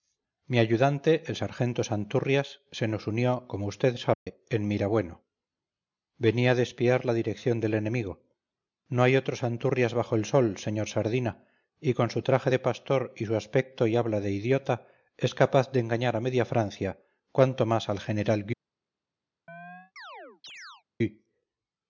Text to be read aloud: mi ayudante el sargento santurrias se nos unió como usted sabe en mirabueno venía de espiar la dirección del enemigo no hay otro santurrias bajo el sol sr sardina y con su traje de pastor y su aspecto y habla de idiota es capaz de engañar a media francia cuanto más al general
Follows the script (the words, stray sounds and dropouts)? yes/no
no